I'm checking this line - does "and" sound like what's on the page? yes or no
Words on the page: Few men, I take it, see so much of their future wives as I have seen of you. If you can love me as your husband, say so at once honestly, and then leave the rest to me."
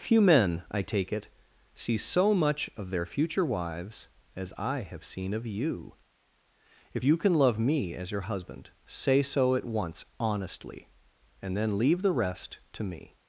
yes